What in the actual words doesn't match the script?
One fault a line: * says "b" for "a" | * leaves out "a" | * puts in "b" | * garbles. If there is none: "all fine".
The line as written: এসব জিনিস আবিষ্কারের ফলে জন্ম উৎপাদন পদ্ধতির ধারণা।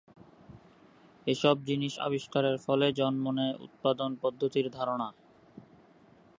* puts in "নেয়"